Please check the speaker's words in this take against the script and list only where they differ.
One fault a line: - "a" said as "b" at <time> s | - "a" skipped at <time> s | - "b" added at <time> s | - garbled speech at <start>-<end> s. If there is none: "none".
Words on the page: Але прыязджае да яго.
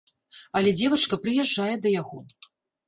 - "дзевачка" added at 0.8 s